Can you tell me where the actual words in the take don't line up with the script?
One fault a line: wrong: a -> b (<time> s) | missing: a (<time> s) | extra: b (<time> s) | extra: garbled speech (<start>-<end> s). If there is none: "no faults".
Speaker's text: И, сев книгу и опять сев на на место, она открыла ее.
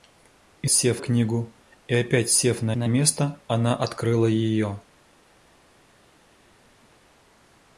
no faults